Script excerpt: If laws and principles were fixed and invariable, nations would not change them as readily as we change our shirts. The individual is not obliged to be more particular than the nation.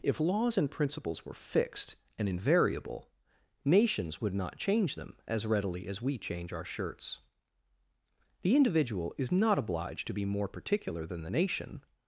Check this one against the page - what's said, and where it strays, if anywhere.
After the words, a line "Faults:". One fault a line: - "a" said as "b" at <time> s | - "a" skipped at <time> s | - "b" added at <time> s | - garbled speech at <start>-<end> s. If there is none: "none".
If laws and principles were fixed and invariable, nations would not change them as readily as we change our shirts. The individual is not obliged to be more particular than the nation.
Faults:
none